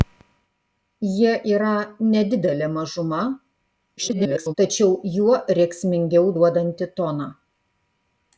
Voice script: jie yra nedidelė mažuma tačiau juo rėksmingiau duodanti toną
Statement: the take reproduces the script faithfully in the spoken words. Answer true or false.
false